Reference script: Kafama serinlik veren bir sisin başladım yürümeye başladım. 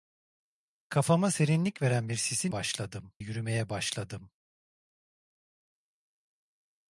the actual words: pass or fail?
pass